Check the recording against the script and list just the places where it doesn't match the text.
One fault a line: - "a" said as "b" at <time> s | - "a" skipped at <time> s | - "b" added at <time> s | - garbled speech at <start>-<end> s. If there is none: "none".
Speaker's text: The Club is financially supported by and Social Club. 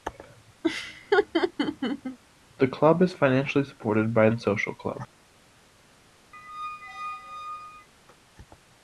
none